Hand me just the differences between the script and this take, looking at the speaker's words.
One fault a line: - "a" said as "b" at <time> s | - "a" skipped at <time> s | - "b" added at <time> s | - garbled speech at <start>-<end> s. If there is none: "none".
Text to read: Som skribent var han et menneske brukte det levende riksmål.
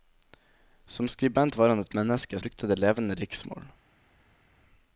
none